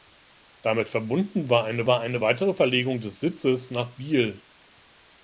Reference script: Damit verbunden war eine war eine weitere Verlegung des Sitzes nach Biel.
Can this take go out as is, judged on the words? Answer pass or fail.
pass